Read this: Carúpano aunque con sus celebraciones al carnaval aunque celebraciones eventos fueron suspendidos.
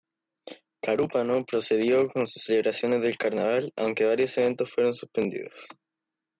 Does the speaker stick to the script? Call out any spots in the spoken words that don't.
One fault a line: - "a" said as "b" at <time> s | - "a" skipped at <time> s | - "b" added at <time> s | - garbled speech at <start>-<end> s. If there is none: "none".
- "aunque" said as "procedió" at 1.4 s
- "al" said as "del" at 3.0 s
- "celebraciones" said as "varios" at 4.0 s